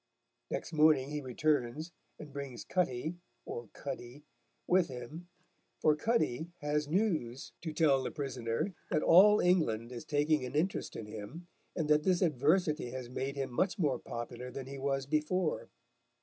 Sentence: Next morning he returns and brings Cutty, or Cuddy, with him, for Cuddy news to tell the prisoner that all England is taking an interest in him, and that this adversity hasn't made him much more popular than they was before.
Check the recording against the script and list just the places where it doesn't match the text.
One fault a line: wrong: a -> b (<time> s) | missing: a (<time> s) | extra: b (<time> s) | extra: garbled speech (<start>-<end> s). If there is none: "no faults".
extra: has (6.6 s)
wrong: hasn't -> has (12.9 s)
wrong: they -> he (14.7 s)